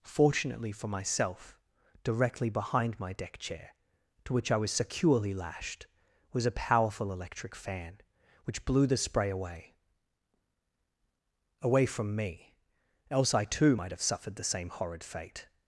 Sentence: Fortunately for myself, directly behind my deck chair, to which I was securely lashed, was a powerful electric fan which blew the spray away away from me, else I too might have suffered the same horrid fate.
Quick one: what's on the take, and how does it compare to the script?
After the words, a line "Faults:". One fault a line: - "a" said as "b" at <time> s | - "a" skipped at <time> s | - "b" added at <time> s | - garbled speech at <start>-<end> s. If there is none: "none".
Fortunately for myself, directly behind my deck chair, to which I was securely lashed, was a powerful electric fan which blew the spray away away from me, else I too might have suffered the same horrid fate.
Faults:
none